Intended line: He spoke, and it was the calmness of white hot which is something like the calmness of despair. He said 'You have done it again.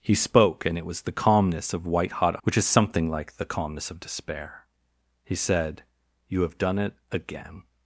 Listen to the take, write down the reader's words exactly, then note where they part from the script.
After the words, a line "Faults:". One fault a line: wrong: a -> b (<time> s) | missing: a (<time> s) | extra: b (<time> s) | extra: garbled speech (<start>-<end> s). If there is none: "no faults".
He spoke, and it was the calmness of white hot which is something like the calmness of despair. He said 'You have done it again.
Faults:
no faults